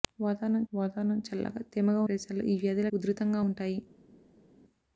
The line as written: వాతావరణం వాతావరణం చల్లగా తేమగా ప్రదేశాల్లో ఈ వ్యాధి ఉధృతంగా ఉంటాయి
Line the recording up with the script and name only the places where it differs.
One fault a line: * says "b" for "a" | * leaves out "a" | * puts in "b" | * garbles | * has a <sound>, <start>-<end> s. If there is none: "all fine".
all fine